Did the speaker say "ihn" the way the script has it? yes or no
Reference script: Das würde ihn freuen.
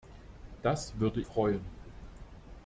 no